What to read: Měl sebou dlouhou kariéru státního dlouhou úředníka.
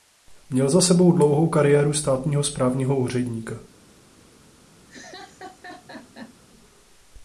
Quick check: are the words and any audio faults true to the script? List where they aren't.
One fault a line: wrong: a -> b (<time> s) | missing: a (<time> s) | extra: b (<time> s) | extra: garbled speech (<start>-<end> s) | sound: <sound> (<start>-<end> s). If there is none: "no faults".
extra: za (0.7 s)
wrong: dlouhou -> správního (2.4 s)
sound: laugh (4.9-6.3 s)